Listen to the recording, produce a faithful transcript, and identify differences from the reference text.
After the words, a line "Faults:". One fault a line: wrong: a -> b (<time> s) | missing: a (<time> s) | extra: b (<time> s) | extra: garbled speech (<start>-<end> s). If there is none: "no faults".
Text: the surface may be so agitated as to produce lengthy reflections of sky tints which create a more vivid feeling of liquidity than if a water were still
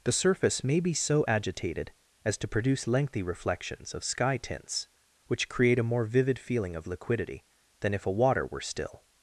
the surface may be so agitated as to produce lengthy reflections of sky tints which create a more vivid feeling of liquidity than if a water were still
Faults:
no faults